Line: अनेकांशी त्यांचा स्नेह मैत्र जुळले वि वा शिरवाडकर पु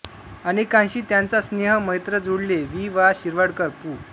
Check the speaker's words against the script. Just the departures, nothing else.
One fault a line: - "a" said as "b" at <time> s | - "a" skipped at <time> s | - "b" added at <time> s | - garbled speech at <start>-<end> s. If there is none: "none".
none